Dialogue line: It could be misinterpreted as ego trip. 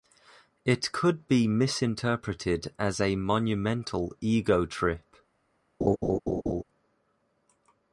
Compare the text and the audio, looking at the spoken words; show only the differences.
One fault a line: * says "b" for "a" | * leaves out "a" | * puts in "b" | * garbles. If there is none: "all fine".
* puts in "a monumental"